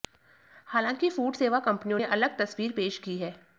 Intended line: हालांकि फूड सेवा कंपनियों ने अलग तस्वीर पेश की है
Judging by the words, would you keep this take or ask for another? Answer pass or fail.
pass